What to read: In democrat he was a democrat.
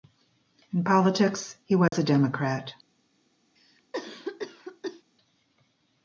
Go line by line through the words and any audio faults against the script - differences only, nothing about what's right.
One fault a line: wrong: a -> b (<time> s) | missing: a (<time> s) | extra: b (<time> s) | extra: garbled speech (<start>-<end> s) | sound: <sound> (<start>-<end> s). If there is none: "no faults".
wrong: democrat -> politics (0.8 s)
sound: dropout (1.9-1.9 s)
sound: cough (3.6-5.0 s)